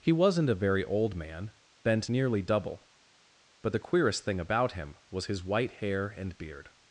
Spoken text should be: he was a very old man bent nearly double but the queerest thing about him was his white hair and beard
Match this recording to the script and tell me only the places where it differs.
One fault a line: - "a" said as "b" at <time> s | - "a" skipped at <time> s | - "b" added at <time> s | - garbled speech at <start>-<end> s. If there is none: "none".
- "was" said as "wasn't" at 0.1 s